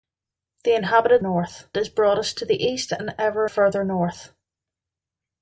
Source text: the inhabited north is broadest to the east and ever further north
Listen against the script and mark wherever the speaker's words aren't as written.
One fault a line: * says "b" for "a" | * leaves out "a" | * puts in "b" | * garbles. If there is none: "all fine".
all fine